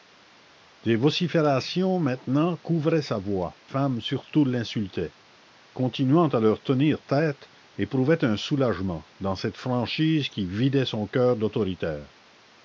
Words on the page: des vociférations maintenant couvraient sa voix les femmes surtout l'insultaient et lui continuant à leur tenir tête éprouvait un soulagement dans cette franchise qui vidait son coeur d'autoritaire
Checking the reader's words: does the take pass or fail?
fail